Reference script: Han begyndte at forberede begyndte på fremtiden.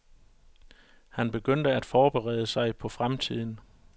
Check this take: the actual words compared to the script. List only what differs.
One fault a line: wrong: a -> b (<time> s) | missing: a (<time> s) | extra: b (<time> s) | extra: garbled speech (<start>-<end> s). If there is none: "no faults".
wrong: begyndte -> sig (2.5 s)